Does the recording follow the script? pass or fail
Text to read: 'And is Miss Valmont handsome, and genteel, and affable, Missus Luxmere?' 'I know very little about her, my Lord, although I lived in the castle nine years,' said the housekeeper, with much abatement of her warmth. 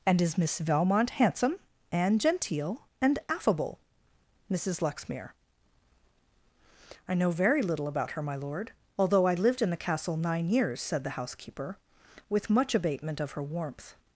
pass